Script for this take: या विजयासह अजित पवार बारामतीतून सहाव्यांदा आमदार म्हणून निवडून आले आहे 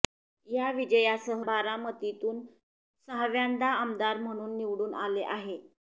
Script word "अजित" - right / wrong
wrong